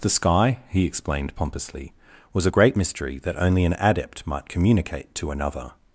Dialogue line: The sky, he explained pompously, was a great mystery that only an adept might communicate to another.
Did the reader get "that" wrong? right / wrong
right